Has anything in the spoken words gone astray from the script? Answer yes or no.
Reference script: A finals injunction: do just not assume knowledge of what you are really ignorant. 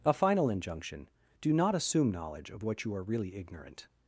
yes